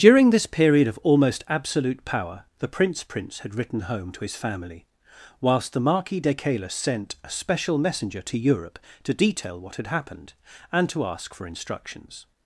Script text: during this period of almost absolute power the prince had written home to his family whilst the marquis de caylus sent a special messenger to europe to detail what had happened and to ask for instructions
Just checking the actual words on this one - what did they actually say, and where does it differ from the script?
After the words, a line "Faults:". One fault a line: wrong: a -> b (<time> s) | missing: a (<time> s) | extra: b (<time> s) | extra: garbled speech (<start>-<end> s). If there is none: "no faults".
during this period of almost absolute power the prince prince had written home to his family whilst the marquis de caylus sent a special messenger to europe to detail what had happened and to ask for instructions
Faults:
extra: prince (3.0 s)